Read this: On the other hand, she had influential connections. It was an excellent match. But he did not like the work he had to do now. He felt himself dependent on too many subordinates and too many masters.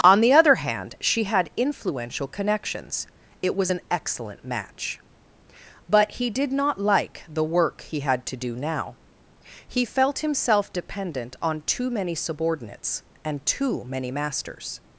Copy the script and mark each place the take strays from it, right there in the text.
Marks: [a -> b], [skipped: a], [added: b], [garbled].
On the other hand, she had influential connections. It was an excellent match. But he did not like the work he had to do now. He felt himself dependent on too many subordinates and too many masters.